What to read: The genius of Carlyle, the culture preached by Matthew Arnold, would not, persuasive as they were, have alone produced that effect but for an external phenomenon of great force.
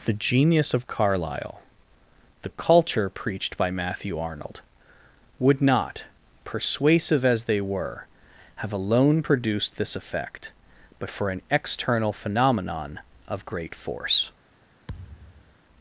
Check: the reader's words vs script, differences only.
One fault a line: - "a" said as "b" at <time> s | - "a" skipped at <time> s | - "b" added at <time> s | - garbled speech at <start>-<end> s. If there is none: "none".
- "that" said as "this" at 9.8 s